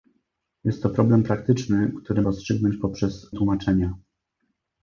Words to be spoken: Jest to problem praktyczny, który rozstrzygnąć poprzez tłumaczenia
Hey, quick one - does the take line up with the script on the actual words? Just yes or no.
yes